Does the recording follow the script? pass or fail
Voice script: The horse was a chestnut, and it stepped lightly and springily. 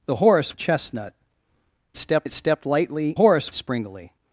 fail